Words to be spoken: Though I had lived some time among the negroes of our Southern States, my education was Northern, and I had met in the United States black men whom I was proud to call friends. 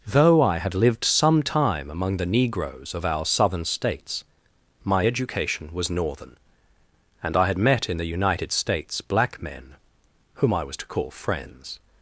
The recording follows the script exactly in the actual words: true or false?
false